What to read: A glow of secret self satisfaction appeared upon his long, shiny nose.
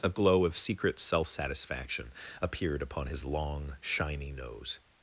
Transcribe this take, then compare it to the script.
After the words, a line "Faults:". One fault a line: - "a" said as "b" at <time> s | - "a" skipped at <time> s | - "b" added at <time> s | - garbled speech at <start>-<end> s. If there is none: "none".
A glow of secret self satisfaction appeared upon his long, shiny nose.
Faults:
none